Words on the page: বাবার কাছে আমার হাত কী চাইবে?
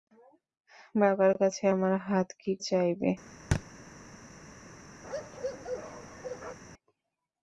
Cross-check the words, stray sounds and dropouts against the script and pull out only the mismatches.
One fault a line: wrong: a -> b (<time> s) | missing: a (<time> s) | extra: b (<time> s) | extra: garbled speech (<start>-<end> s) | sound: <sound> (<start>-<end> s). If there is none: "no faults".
sound: thud (3.5-3.6 s)
sound: bark (5.0-6.6 s)